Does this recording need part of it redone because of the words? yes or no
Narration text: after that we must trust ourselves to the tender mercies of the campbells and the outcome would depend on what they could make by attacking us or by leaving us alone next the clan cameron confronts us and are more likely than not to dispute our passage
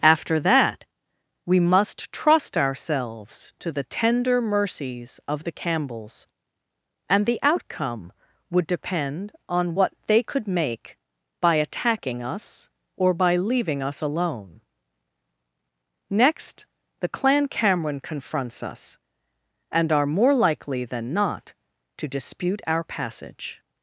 no